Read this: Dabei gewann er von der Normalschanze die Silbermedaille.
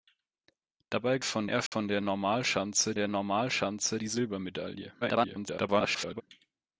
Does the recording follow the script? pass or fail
fail